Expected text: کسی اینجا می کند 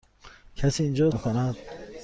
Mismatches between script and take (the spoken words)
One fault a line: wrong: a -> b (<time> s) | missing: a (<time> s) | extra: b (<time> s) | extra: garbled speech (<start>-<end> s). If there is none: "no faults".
no faults